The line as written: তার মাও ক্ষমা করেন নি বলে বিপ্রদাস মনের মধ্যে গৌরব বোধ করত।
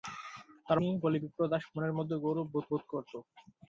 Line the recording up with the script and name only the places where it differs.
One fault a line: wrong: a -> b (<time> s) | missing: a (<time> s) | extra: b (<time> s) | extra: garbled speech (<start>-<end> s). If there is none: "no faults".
missing: মাও ক্ষমা করেন (0.8 s)
extra: বোধ (2.7 s)